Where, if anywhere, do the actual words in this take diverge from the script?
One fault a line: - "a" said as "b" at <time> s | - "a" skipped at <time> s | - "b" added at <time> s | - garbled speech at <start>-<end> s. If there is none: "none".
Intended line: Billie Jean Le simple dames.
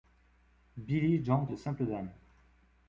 none